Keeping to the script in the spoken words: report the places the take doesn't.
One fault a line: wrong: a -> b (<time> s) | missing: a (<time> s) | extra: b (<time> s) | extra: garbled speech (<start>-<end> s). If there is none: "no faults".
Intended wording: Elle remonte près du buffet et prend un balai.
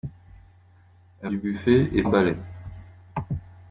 missing: remonte près (1.3 s)
missing: prend (2.0 s)